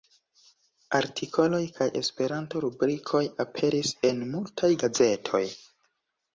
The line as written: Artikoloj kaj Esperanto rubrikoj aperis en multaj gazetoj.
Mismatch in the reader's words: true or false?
false